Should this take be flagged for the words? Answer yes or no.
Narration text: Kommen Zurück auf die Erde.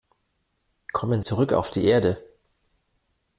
no